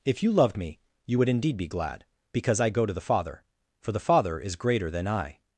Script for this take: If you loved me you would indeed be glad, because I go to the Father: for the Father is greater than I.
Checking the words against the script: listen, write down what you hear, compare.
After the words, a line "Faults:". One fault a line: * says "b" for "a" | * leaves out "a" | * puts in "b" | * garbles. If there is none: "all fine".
If you loved me you would indeed be glad, because I go to the Father: for the Father is greater than I.
Faults:
all fine